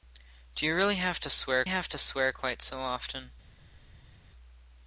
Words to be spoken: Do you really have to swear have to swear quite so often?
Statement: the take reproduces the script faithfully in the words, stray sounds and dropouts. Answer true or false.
true